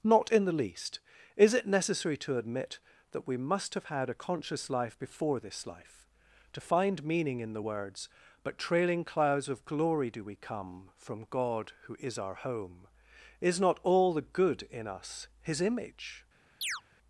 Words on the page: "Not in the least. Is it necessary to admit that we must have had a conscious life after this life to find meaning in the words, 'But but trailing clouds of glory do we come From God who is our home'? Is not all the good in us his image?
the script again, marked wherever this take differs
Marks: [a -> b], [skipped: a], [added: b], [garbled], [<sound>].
"Not in the least. Is it necessary to admit that we must have had a conscious life [after -> before] this life to find meaning in the words, 'But [skipped: but] trailing clouds of glory do we come From God who is our home'? Is not all the good in us his image? [chirp]